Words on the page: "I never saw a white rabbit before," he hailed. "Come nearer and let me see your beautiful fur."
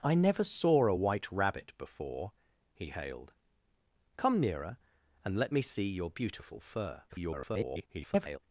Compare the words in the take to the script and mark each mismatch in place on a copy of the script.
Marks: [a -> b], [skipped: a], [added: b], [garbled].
"I never saw a white rabbit before," he hailed. "Come nearer and let me see your beautiful fur." [garbled]